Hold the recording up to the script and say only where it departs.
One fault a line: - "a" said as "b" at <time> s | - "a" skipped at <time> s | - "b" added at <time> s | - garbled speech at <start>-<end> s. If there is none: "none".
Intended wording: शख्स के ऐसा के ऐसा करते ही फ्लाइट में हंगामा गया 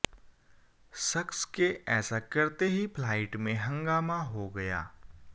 - "के ऐसा" skipped at 2.2 s
- "हो" added at 4.2 s